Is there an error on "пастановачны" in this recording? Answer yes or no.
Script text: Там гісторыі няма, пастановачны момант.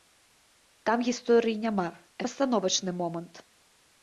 no